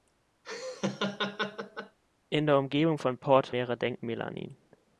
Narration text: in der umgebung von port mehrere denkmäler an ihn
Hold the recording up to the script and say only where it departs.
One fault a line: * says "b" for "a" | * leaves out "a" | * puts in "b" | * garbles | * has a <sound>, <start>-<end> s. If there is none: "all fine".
* has a laugh, 0.4-2.0 s